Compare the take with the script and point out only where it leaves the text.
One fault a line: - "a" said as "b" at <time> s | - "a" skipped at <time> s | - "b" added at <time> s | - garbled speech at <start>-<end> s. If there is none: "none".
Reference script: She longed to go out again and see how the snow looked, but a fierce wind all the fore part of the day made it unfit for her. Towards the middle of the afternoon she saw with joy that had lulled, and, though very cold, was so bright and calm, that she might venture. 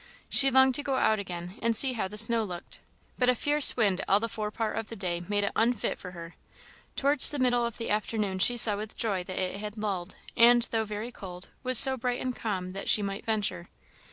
- "it" added at 9.4 s